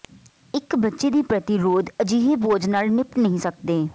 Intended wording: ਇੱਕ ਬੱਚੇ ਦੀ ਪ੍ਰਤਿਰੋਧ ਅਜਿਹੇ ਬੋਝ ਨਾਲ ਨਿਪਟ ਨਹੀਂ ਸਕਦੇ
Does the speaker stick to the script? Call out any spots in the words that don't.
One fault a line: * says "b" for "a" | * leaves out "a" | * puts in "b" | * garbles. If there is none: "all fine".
all fine